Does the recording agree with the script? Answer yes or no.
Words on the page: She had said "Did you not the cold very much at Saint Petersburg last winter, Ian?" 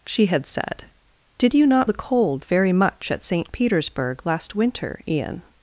yes